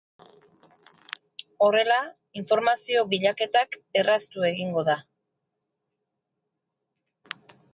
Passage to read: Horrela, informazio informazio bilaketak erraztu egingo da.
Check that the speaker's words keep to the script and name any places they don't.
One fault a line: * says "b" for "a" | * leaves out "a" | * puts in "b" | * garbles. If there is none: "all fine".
* leaves out "informazio"